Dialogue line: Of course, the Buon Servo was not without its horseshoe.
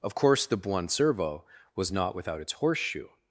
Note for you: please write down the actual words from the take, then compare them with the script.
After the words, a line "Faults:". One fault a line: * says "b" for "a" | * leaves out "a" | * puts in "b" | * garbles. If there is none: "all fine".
Of course, the Buon Servo was not without its horseshoe.
Faults:
all fine